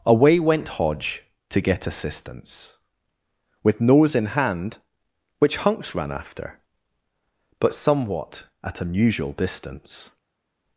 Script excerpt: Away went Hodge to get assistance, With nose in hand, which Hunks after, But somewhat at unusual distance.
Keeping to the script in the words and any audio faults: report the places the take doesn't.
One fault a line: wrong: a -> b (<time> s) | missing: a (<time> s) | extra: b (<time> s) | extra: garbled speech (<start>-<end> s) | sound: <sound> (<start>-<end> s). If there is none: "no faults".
extra: ran (5.9 s)